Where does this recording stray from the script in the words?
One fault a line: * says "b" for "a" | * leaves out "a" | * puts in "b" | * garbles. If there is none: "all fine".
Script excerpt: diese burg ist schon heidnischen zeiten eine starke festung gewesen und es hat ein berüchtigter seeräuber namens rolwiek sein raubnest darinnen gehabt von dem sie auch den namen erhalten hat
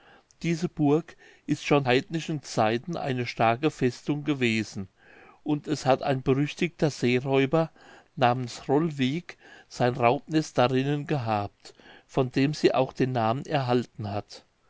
all fine